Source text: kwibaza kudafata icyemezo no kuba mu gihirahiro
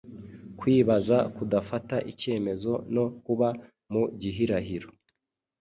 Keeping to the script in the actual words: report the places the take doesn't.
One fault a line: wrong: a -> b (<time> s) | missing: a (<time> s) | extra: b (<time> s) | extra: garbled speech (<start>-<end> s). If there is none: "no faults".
no faults